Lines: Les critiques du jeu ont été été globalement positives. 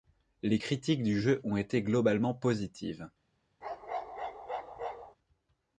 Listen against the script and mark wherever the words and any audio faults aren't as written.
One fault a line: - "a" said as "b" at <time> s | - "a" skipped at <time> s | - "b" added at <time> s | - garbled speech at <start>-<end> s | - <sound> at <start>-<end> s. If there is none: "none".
- "été" skipped at 1.8 s
- bark at 3.6-5.2 s